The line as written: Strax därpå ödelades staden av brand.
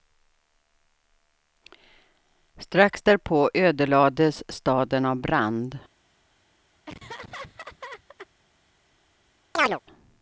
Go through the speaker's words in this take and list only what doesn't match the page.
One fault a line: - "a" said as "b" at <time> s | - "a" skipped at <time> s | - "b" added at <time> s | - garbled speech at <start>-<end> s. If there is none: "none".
none